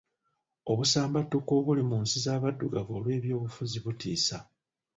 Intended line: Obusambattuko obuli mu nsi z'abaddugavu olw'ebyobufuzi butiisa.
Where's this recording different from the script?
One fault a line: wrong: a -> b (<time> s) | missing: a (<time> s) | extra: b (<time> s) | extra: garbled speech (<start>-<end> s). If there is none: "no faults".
no faults